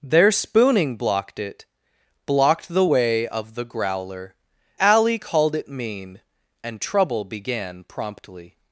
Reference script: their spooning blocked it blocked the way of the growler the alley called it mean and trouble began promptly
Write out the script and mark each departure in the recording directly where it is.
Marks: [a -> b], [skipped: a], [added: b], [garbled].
their spooning blocked it blocked the way of the growler [skipped: the] alley called it mean and trouble began promptly